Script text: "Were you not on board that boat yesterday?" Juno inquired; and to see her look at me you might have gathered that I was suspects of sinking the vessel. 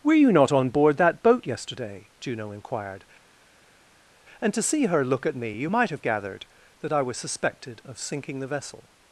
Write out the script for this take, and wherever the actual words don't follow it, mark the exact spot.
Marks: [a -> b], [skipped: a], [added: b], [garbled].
"Were you not on board that boat yesterday?" Juno inquired; and to see her look at me you might have gathered that I was [suspects -> suspected] of sinking the vessel.